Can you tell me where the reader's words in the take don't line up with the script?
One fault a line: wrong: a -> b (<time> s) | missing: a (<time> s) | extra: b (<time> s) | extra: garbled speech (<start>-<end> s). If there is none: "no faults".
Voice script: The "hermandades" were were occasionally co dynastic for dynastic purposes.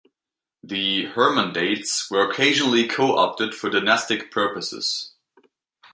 missing: were (2.3 s)
wrong: dynastic -> opted (3.1 s)